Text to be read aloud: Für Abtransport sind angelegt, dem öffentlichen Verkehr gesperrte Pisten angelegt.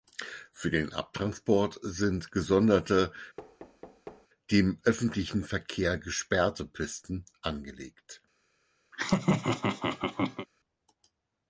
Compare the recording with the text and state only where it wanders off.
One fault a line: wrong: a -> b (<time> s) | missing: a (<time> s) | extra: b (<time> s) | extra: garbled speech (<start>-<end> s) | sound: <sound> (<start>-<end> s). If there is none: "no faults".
extra: den (0.7 s)
wrong: angelegt -> gesonderte (2.3 s)
sound: thud (3.4-4.3 s)
sound: laugh (8.9-10.5 s)